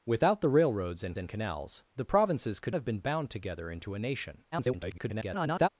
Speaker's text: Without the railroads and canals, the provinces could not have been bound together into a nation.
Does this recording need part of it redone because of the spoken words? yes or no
yes